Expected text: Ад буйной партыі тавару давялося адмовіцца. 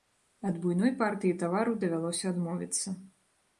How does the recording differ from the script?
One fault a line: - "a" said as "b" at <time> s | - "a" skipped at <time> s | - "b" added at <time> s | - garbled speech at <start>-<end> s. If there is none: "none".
none